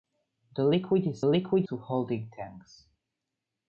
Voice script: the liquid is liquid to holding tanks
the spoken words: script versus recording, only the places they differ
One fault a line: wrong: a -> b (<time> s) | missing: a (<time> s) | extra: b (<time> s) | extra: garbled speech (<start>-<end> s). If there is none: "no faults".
no faults